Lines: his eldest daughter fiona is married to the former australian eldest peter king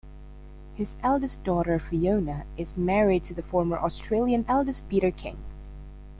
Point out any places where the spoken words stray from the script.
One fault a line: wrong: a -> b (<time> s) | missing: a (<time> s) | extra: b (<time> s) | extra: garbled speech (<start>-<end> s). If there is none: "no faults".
no faults